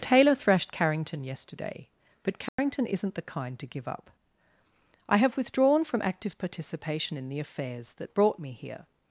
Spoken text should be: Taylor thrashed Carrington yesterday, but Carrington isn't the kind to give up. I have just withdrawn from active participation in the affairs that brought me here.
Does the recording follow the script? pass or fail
fail